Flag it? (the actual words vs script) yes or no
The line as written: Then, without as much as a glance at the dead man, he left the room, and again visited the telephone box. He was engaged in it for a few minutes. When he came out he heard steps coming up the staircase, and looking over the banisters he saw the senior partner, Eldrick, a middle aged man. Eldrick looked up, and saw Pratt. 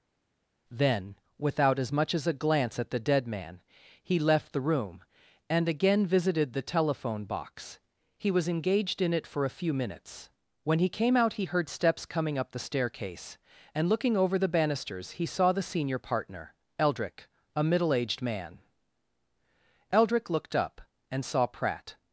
no